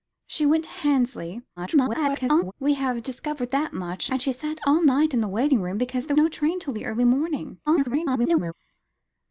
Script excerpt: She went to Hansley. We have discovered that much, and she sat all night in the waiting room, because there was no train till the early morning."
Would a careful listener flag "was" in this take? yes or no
yes